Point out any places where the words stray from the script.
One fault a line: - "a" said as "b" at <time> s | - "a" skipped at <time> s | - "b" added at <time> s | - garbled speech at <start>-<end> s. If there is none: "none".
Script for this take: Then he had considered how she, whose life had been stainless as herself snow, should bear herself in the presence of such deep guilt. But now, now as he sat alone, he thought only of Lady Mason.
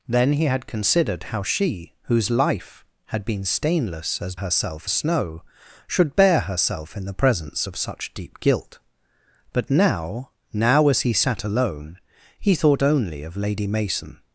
none